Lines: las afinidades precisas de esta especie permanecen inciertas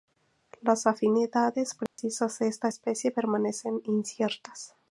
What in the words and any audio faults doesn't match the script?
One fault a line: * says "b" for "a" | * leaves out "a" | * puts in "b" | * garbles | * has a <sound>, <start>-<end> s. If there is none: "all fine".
* has a dropout, 1.9-2.0 s